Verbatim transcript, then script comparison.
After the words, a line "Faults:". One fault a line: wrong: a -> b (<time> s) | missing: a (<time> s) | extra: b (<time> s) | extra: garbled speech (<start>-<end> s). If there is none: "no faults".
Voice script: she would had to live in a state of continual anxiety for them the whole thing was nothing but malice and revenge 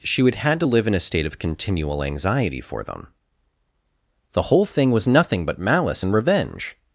she would had to live in a state of continual anxiety for them the whole thing was nothing but malice and revenge
Faults:
no faults